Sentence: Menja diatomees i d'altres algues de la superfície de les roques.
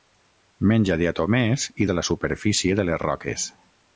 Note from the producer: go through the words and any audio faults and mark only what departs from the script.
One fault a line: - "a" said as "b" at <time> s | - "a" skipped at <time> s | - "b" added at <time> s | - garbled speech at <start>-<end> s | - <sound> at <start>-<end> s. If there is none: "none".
- "d'altres algues" skipped at 1.9 s